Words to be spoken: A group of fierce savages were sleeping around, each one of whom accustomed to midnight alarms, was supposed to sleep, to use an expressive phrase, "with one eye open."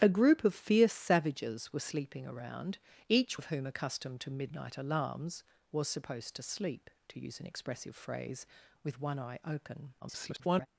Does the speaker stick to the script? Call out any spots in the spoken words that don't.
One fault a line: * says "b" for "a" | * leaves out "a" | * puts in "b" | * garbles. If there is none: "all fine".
* leaves out "one"
* garbles